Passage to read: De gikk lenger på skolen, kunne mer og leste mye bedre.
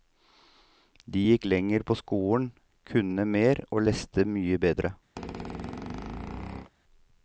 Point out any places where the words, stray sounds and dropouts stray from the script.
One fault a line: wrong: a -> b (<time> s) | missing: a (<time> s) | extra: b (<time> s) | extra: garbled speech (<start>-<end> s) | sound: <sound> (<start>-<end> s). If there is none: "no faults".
sound: squeak (5.2-6.7 s)